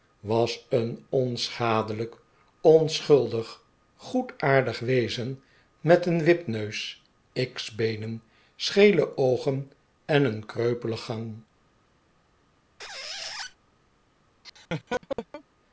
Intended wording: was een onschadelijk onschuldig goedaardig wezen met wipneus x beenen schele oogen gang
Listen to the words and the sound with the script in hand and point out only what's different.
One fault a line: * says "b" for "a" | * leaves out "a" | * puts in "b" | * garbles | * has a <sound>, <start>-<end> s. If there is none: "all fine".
* puts in "een"
* puts in "en een kreupelen"
* has a squeak, 12.8-13.6 s
* has a laugh, 14.4-15.4 s